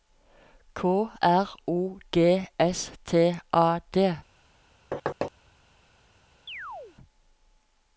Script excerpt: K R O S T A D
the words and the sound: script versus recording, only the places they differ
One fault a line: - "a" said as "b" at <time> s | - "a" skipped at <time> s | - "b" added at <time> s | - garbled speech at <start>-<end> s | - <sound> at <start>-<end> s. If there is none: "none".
- "G" added at 2.1 s
- thud at 4.9-5.3 s
- chirp at 6.5-7.0 s